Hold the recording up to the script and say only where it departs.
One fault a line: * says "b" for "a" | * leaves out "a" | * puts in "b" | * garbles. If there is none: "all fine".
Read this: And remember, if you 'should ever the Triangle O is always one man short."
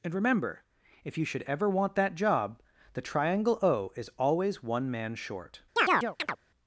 * puts in "want that job"